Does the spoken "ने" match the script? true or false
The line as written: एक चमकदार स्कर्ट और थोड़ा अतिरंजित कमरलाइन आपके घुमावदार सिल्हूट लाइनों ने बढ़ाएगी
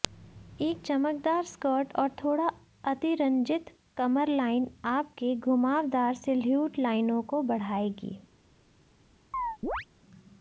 false